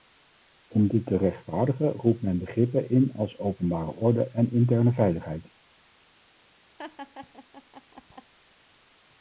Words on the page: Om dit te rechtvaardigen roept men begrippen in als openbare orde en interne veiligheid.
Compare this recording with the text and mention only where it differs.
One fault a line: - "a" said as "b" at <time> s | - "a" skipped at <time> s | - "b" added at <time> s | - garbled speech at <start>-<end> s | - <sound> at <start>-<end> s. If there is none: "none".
- laugh at 6.8-8.3 s